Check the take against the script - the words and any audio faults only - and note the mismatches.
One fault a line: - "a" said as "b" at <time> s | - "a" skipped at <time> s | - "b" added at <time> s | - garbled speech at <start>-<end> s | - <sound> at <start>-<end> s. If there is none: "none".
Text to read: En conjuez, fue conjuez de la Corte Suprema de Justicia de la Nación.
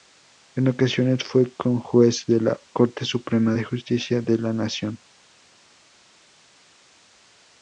- "conjuez" said as "ocasiones" at 0.7 s